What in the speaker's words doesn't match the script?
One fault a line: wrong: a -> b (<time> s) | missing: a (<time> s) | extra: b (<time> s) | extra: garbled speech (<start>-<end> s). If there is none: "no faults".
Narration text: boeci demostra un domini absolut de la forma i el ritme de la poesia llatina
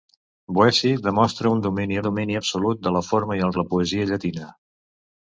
extra: domini (2.1 s)
missing: ritme (3.6 s)